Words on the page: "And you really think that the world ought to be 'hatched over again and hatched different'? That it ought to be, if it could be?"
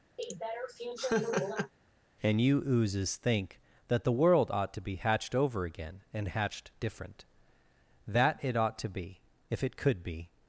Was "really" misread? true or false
true